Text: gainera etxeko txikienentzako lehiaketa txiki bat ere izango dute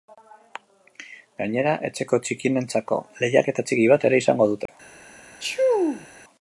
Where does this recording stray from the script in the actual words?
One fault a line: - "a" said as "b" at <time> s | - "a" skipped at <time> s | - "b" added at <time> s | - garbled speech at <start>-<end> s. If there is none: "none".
none